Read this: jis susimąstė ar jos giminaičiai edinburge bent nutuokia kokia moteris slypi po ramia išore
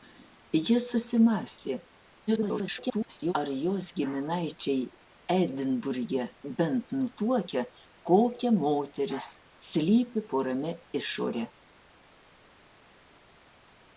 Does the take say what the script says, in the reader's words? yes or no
no